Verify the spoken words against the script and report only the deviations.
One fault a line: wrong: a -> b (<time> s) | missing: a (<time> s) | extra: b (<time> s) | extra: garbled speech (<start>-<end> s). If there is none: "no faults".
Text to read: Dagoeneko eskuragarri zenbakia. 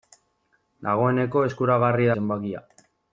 no faults